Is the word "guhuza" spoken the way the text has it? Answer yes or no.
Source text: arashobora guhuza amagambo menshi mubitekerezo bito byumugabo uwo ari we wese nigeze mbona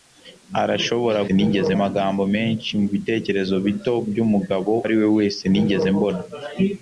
no